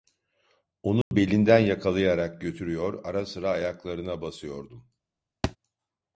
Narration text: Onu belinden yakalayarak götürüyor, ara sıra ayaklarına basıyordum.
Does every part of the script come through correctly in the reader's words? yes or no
yes